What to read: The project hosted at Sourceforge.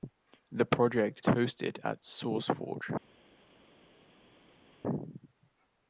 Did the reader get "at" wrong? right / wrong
right